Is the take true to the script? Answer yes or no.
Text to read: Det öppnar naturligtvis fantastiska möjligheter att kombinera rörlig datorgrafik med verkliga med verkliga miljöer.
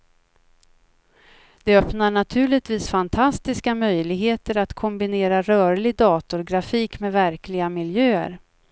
no